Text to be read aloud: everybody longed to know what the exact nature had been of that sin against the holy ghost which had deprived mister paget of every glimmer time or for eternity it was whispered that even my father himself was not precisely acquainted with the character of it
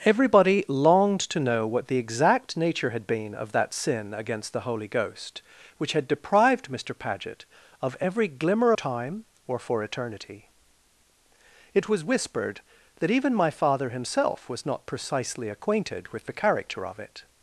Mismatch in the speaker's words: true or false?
false